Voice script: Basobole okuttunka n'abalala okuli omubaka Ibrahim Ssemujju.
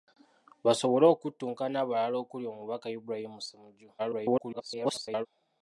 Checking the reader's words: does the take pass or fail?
fail